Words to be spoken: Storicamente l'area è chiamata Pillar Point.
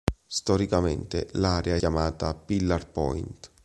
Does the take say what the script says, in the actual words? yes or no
yes